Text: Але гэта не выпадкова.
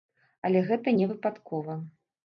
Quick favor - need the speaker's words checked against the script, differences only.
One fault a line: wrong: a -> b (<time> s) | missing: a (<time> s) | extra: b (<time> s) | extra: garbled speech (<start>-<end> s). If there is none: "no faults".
no faults